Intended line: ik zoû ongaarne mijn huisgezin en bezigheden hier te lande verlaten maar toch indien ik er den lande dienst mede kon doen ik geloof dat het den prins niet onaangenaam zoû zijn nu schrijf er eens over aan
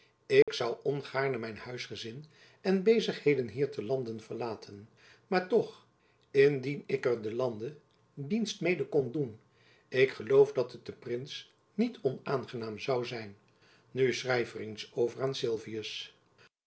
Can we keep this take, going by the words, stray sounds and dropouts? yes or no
no